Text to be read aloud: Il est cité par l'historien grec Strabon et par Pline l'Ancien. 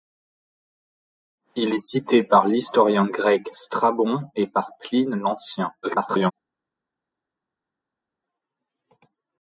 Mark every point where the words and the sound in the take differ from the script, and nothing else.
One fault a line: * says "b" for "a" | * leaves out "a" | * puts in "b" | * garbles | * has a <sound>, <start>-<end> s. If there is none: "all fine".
* garbles